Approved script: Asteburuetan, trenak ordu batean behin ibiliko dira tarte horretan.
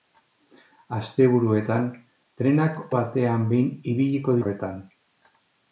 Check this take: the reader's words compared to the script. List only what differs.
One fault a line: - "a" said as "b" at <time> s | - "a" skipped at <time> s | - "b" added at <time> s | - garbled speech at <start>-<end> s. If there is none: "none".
- "ordu" skipped at 2.8 s
- "dira tarte" skipped at 4.4 s